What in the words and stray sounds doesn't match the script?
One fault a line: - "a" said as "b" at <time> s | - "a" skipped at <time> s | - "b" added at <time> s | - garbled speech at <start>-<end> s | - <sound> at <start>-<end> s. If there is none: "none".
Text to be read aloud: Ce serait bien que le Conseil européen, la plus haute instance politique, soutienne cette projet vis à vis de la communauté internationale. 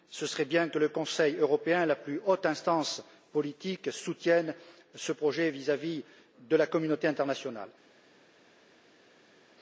- "cette" said as "ce" at 4.9 s